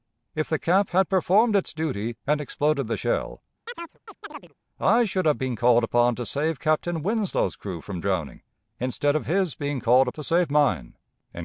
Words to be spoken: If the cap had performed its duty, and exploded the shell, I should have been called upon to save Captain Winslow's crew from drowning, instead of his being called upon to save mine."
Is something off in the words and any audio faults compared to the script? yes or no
yes